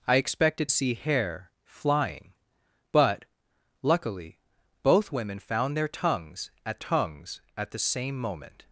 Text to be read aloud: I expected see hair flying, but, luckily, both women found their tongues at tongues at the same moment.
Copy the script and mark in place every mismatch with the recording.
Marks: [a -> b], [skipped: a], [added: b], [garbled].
I expected see hair flying, but, luckily, both women found their tongues at tongues at the same moment.